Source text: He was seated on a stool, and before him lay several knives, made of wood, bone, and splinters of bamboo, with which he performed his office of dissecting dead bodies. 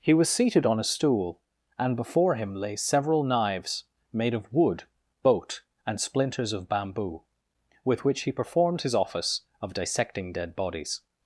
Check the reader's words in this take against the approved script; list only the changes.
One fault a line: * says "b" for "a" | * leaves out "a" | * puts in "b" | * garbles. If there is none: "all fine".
* says "boat" for "bone"